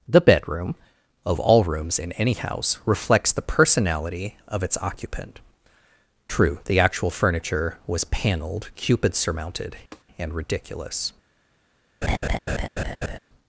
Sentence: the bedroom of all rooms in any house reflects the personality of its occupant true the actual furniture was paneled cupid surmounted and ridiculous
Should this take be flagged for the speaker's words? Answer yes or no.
no